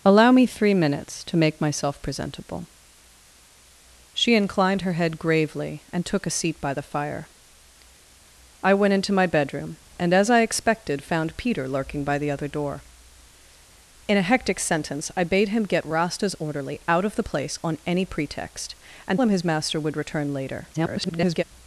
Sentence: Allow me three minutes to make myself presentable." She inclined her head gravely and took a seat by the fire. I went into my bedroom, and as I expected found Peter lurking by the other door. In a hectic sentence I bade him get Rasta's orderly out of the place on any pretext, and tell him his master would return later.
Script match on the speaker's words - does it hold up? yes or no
no